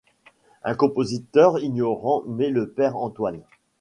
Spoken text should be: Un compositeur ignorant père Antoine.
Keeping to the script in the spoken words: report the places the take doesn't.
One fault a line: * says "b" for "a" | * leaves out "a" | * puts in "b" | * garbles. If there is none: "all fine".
* puts in "met le"